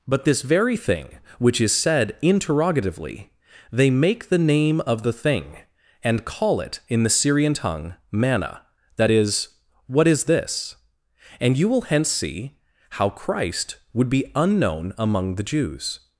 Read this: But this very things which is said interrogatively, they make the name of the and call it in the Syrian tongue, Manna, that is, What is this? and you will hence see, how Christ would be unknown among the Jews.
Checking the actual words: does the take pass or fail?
fail